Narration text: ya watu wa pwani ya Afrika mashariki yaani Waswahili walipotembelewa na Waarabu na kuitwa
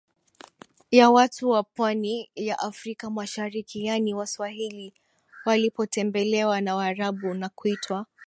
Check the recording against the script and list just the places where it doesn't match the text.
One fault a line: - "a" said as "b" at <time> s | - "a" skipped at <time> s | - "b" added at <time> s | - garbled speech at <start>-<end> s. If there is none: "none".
none